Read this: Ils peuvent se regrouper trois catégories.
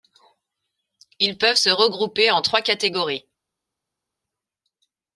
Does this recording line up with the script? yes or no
no